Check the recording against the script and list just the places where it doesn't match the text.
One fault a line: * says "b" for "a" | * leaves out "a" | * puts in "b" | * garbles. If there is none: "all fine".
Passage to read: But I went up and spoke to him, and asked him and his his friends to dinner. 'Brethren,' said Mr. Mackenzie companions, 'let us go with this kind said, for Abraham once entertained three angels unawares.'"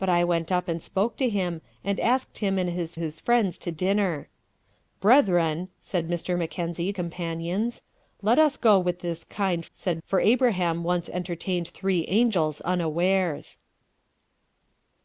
all fine